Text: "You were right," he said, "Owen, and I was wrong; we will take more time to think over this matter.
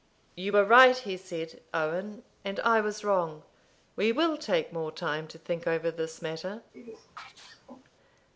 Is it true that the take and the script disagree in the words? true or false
false